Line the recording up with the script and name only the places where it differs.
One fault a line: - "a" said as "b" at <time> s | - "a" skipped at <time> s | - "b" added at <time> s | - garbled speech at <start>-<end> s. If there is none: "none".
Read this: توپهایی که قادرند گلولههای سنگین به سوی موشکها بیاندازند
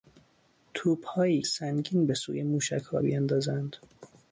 - "که قادرند گلولههای" skipped at 1.4 s